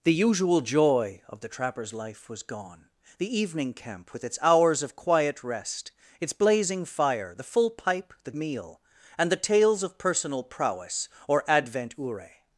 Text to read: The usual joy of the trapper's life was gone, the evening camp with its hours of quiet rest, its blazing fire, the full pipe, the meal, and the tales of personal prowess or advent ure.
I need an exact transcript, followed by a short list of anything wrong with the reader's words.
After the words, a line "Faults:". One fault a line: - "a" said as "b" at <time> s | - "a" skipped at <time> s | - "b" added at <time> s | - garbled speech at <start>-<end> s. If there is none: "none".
The usual joy of the trapper's life was gone, the evening camp with its hours of quiet rest, its blazing fire, the full pipe, the meal, and the tales of personal prowess or advent ure.
Faults:
none